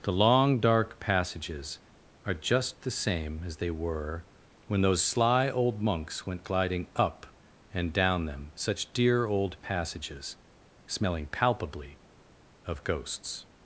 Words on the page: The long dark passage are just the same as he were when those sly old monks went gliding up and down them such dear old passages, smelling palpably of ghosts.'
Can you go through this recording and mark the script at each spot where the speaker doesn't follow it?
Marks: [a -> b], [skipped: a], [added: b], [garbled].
The long dark [passage -> passages] are just the same as [he -> they] were when those sly old monks went gliding up and down them such dear old passages, smelling palpably of ghosts.'